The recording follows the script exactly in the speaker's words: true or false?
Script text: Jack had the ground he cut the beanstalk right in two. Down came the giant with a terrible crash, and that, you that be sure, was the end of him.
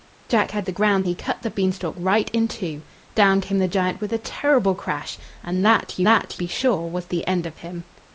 true